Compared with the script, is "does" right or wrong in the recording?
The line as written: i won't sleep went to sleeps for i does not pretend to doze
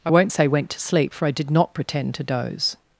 wrong